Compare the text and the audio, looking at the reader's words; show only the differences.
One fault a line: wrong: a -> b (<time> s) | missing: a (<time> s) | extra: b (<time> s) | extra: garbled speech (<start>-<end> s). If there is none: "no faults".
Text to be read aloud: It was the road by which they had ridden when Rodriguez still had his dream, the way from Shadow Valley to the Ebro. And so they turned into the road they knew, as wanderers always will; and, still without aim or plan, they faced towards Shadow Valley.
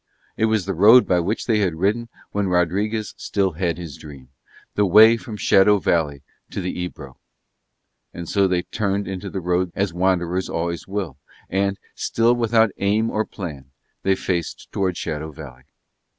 missing: they knew (9.7 s)